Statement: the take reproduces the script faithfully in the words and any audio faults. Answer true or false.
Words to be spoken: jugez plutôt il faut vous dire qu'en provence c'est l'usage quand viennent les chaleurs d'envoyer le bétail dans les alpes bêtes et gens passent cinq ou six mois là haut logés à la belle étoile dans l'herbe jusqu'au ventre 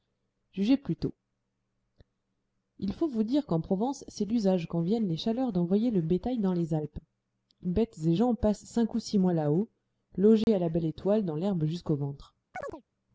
false